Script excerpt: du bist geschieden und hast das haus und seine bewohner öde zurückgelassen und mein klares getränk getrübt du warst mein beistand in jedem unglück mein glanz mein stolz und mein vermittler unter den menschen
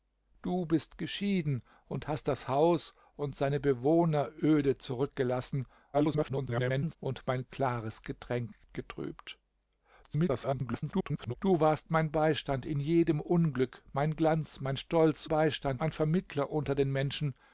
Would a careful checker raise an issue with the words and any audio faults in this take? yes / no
yes